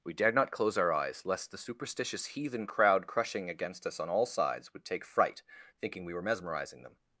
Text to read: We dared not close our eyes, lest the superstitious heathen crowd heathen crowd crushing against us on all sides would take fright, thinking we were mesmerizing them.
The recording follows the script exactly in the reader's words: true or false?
false